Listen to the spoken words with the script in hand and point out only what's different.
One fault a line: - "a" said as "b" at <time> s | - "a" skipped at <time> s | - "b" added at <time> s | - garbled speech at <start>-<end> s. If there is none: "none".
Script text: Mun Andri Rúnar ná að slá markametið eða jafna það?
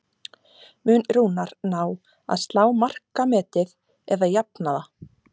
- "Andri" skipped at 1.0 s